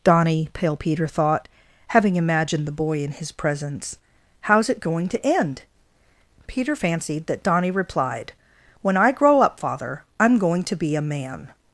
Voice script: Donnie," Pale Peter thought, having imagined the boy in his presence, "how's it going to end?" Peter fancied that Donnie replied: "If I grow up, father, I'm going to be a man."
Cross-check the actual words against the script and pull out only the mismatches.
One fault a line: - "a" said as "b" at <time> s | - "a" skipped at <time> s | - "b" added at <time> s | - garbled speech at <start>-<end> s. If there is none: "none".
- "If" said as "When" at 8.8 s